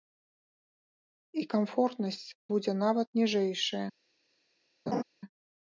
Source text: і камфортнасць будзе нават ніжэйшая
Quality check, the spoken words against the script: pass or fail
pass